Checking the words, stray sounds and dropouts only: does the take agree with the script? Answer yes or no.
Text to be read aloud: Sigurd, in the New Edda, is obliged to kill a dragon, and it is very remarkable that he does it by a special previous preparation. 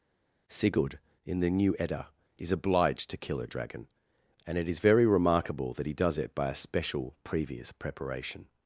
yes